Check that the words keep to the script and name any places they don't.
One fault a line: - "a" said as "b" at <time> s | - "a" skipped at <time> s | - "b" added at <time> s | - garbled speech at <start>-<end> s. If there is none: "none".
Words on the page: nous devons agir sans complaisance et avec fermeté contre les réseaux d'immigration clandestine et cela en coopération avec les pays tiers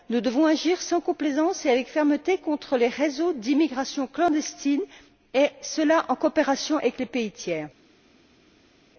none